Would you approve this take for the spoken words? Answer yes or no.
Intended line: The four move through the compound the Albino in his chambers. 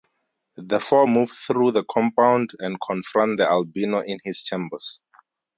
no